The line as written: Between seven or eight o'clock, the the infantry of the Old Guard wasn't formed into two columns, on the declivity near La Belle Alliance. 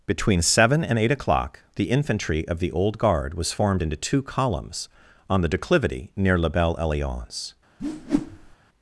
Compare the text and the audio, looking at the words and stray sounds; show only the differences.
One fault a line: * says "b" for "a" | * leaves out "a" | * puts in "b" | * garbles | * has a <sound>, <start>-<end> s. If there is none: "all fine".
* says "and" for "or"
* leaves out "the"
* says "was" for "wasn't"
* has a whoosh, 7.8-8.6 s